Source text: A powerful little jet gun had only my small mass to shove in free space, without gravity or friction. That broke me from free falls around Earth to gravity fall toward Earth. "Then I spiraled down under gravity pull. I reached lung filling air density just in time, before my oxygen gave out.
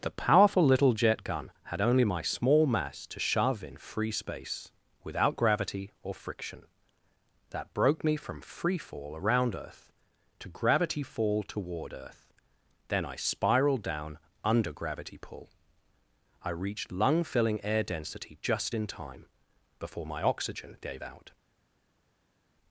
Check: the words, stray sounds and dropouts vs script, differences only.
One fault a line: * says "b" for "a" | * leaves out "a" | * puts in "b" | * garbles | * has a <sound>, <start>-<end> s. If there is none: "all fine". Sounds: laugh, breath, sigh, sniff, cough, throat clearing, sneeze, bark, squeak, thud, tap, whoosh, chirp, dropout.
* says "The" for "A"
* says "fall" for "falls"